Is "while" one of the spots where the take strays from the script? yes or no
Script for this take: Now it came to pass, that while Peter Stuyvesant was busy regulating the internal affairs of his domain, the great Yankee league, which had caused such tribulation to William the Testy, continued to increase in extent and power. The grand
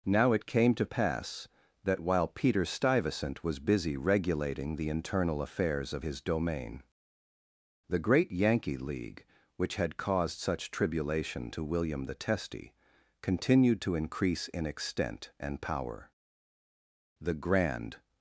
no